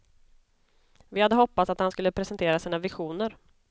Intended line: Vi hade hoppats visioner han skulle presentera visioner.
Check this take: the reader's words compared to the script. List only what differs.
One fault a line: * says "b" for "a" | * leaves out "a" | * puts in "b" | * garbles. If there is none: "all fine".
* says "att" for "visioner"
* puts in "sina"